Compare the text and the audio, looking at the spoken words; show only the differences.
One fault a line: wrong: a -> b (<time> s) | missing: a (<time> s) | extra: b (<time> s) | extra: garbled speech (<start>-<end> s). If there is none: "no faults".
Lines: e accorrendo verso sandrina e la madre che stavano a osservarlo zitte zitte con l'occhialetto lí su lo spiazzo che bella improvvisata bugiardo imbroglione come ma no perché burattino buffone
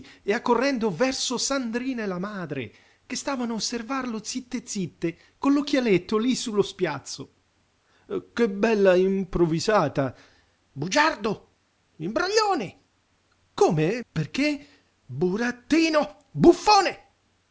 missing: ma no (14.0 s)